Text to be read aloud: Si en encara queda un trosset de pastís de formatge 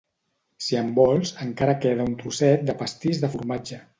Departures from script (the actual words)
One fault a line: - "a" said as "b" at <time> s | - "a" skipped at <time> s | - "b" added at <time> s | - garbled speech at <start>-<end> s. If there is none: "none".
- "vols" added at 1.0 s